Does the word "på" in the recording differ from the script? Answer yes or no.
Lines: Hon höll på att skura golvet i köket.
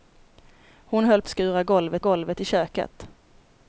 yes